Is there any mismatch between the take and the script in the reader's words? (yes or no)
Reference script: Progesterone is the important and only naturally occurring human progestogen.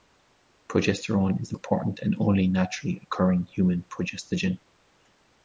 no